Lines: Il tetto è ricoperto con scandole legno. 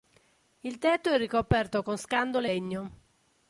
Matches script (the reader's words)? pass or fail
pass